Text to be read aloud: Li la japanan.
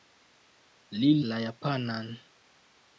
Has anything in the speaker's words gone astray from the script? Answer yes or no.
no